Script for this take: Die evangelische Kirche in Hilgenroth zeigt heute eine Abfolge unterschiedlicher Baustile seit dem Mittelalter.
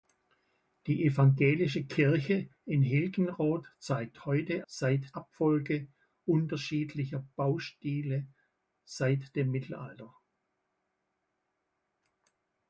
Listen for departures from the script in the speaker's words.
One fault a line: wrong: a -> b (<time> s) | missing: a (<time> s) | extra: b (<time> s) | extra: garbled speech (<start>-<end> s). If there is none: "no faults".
wrong: eine -> seit (4.7 s)